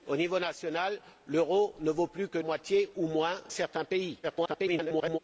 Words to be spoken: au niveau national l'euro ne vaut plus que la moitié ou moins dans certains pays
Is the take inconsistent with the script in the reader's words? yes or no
yes